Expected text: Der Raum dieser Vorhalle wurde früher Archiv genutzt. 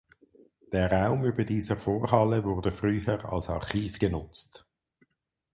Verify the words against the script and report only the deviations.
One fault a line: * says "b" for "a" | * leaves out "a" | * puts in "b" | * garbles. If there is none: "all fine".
* puts in "über"
* puts in "als"